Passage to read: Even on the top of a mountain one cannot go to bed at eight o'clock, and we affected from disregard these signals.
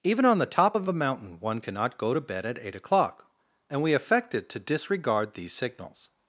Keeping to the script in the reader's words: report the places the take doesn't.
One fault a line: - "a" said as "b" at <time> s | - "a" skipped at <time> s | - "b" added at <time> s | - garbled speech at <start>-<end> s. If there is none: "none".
- "from" said as "to" at 4.5 s